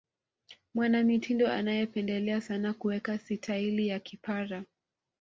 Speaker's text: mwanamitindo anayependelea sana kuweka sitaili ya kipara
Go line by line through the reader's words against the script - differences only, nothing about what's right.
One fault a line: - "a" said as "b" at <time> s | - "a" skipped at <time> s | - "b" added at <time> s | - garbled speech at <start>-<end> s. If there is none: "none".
none